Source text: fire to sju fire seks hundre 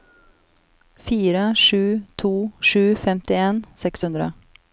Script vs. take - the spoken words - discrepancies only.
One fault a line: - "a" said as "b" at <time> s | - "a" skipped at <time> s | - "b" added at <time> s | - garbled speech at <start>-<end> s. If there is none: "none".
- "sju" added at 1.6 s
- "fire" said as "femtien" at 3.0 s